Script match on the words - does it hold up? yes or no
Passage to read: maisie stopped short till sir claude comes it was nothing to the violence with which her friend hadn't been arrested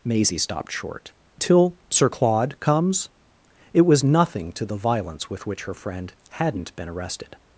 yes